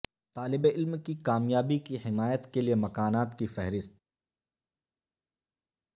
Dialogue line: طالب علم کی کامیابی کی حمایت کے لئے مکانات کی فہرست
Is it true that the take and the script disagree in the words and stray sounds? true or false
false